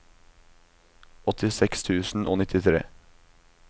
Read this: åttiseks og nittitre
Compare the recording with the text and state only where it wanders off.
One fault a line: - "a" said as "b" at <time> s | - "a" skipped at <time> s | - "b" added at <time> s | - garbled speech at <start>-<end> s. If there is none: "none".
- "tusen" added at 1.9 s